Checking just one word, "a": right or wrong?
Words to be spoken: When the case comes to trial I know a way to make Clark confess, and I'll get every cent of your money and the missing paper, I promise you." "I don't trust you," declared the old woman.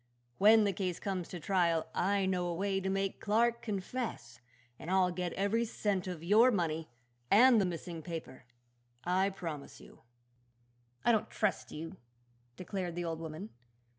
right